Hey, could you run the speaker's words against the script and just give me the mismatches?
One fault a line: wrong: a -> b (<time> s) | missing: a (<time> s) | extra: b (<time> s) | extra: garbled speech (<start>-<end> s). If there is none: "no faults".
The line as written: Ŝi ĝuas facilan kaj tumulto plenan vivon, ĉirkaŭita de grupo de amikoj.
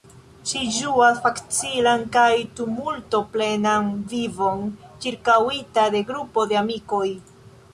no faults